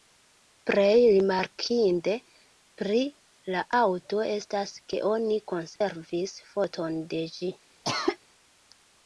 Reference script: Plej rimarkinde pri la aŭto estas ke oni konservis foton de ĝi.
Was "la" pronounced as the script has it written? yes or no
yes